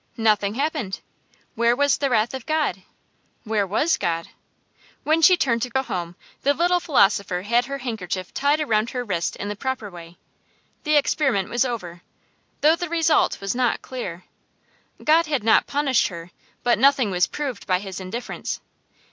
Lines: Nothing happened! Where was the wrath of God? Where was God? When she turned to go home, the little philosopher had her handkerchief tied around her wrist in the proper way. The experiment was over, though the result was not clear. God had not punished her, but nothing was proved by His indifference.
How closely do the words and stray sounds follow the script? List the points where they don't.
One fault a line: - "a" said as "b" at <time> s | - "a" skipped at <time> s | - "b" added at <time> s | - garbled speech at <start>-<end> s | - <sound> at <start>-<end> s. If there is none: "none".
- dropout at 5.7-5.8 s